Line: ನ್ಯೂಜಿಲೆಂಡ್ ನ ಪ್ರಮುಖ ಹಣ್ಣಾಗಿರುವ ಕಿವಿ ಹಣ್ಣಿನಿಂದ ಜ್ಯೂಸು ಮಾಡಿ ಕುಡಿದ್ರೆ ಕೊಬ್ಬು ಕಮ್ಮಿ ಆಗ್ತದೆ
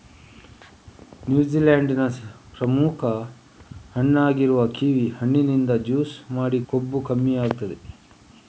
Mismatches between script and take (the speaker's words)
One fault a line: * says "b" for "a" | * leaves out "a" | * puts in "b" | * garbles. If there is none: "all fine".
* leaves out "ಕುಡಿದ್ರೆ"